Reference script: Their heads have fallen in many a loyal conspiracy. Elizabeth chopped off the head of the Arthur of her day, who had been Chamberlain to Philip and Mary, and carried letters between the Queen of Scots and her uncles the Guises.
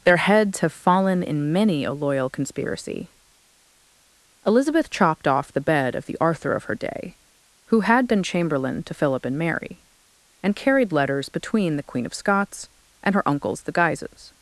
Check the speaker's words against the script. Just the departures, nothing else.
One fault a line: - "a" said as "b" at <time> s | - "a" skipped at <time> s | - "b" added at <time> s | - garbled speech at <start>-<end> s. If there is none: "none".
- "head" said as "bed" at 5.6 s